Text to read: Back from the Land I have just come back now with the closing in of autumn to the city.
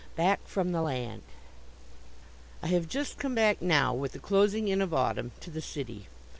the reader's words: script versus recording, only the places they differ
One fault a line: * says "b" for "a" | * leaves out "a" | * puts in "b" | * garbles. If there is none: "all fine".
all fine